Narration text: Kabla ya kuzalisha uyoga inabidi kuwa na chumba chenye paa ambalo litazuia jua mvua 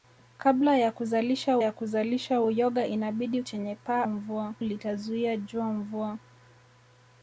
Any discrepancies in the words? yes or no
yes